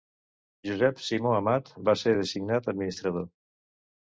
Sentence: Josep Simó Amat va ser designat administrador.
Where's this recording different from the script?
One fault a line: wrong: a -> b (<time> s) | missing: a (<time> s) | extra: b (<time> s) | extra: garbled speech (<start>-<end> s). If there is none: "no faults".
no faults